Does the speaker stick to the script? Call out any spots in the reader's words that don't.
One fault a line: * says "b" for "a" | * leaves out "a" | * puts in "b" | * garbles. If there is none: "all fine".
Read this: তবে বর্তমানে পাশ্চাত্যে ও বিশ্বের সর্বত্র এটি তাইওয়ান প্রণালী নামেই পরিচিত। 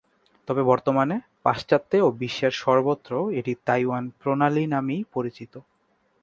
all fine